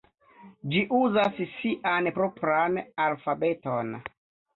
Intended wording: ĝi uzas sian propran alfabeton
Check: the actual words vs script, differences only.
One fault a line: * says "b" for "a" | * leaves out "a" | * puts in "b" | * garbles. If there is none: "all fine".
all fine